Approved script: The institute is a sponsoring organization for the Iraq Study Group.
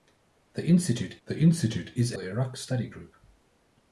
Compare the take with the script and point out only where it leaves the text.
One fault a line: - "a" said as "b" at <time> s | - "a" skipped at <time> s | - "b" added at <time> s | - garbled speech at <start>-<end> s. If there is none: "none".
- "the institute" added at 1.3 s
- "sponsoring organization for" skipped at 2.2 s